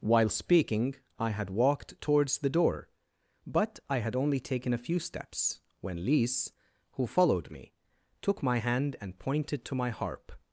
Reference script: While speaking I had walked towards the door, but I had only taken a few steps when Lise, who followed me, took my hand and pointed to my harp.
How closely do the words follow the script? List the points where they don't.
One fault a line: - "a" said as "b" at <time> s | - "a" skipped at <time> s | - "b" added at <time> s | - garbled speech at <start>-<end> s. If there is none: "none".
none